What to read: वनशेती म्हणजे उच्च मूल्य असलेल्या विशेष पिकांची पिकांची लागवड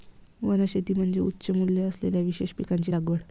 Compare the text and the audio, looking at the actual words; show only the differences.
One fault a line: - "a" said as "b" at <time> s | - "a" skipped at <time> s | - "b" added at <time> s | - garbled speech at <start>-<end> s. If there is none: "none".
- "पिकांची" skipped at 3.0 s